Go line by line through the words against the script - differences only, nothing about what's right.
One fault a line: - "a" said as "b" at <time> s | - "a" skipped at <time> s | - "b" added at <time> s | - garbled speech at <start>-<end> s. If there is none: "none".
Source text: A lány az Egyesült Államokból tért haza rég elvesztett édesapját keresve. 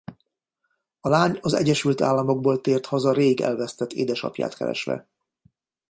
none